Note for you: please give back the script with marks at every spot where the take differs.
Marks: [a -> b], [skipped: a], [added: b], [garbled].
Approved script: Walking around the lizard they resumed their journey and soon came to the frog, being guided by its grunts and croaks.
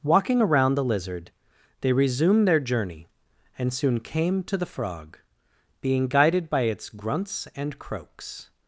Walking around the lizard they resumed their journey and soon came to the frog, being guided by its grunts and croaks.